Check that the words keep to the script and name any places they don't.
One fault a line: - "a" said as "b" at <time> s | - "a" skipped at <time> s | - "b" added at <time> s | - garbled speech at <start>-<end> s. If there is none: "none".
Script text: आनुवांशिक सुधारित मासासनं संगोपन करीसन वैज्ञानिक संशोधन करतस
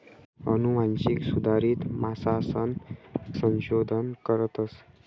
- "संगोपन करीसन वैज्ञानिक" skipped at 2.7 s